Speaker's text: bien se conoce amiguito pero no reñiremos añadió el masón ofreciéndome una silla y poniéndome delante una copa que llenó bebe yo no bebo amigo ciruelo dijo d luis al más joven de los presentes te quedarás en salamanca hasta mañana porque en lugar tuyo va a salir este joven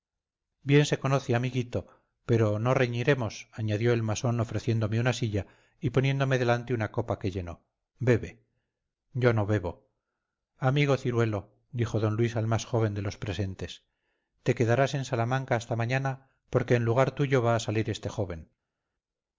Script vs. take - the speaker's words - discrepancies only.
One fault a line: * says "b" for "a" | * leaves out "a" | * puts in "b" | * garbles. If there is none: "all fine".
all fine